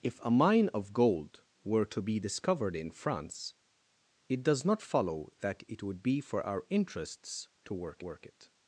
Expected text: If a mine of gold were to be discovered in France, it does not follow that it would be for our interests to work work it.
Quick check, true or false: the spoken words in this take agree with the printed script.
true